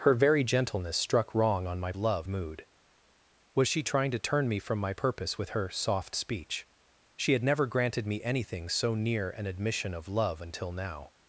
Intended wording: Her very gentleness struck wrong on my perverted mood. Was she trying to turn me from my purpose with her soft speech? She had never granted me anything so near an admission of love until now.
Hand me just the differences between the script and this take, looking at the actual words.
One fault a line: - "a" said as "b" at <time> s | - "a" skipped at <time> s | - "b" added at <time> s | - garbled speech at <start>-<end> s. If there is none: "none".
- "perverted" said as "love" at 2.0 s